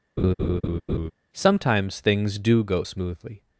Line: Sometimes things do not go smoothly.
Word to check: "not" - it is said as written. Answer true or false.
false